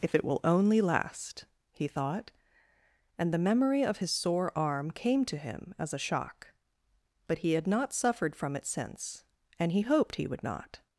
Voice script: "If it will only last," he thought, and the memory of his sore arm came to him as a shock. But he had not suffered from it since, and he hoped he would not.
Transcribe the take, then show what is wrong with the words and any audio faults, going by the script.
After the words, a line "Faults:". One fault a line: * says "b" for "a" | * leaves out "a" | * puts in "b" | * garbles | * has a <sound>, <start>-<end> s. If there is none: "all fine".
"If it will only last," he thought, and the memory of his sore arm came to him as a shock. But he had not suffered from it since, and he hoped he would not.
Faults:
all fine